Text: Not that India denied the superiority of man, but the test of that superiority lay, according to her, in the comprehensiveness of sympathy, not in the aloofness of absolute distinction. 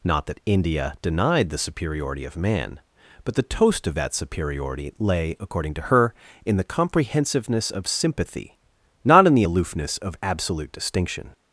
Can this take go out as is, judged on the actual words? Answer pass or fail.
fail